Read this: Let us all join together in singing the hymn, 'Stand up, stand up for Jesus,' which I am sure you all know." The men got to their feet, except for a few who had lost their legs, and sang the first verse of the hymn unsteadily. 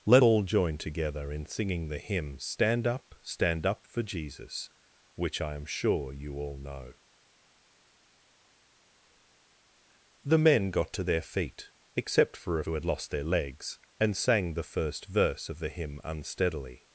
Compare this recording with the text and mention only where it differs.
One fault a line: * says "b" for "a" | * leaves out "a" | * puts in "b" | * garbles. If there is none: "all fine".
* leaves out "us"
* leaves out "few"